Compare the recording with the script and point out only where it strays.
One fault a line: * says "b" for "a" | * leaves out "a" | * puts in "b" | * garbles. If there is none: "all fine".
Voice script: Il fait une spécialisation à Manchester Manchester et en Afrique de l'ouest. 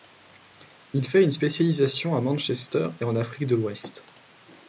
* leaves out "Manchester"